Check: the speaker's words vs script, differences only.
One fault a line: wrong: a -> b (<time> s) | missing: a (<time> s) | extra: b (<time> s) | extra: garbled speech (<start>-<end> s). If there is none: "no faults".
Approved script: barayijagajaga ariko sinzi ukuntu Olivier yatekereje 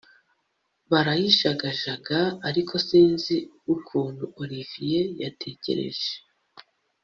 no faults